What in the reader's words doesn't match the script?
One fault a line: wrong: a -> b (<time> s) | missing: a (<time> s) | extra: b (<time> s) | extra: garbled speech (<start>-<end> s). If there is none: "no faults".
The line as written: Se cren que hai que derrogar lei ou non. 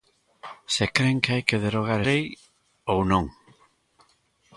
no faults